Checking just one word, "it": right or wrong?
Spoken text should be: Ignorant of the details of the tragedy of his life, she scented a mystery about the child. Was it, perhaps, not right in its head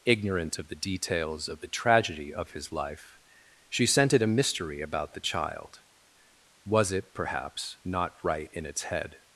right